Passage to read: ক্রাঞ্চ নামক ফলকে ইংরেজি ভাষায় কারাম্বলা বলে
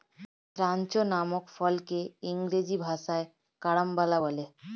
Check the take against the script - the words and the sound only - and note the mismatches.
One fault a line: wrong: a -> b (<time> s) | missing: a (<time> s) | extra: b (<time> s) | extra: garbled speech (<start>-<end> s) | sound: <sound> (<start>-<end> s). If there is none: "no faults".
no faults